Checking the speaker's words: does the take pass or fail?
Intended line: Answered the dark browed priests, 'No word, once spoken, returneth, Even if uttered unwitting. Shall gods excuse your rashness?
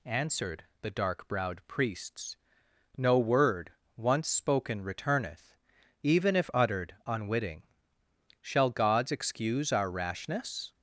fail